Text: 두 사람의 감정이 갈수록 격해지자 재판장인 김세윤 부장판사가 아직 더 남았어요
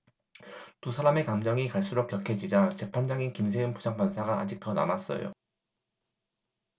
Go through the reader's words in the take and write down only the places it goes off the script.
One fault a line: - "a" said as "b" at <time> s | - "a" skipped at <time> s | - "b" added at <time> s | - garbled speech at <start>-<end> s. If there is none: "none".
none